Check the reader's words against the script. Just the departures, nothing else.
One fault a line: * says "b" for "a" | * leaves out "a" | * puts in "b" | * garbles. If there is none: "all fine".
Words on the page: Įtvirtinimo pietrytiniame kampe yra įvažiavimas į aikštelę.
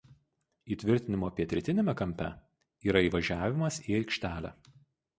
all fine